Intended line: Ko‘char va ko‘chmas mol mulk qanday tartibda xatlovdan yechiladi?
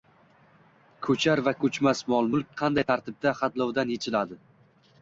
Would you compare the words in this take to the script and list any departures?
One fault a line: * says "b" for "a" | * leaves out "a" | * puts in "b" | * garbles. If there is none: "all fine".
all fine